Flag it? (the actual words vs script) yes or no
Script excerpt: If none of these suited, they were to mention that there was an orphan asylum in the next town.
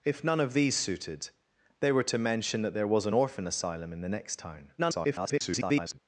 yes